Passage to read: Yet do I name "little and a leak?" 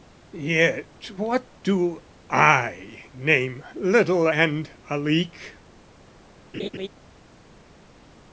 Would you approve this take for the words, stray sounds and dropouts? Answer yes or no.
no